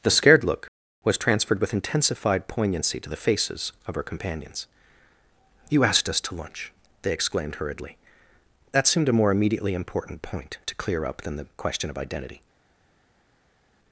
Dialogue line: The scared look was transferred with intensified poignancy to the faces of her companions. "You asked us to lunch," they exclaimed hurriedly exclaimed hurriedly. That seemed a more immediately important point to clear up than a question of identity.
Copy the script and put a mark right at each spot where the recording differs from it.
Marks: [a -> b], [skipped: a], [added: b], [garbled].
The scared look was transferred with intensified poignancy to the faces of her companions. "You asked us to lunch," they exclaimed hurriedly [skipped: exclaimed hurriedly.] That seemed a more immediately important point to clear up than [a -> the] question of identity.